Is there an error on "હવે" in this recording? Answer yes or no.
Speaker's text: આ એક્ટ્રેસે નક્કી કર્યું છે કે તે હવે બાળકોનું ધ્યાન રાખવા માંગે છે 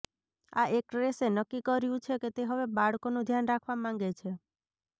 no